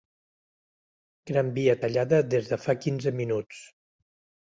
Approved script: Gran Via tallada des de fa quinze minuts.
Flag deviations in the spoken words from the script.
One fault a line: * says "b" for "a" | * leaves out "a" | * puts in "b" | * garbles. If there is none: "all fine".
all fine